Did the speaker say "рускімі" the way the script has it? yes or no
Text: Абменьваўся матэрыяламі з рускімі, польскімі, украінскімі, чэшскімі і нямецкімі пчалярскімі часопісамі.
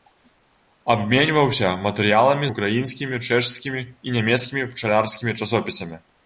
no